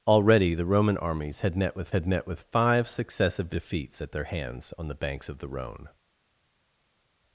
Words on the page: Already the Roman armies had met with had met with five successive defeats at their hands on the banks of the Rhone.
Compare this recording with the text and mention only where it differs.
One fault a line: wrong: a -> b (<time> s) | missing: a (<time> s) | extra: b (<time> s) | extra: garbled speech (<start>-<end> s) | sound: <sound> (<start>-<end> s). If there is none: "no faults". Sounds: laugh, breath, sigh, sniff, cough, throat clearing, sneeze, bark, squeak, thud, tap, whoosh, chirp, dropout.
no faults